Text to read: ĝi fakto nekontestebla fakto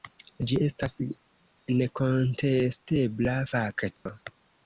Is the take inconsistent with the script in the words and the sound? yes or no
yes